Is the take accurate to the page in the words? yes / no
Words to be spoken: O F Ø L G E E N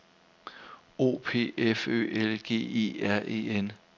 no